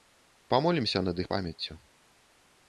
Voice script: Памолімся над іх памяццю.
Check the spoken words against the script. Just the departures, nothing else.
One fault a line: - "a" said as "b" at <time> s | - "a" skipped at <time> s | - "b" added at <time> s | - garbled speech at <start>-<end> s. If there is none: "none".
none